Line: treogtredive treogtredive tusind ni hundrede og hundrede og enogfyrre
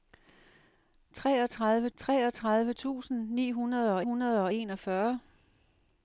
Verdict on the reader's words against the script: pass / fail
pass